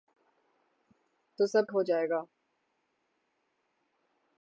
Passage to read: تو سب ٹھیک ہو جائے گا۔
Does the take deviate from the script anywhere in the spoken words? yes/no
yes